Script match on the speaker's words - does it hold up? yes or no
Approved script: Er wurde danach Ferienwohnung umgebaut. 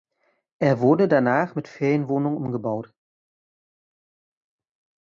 no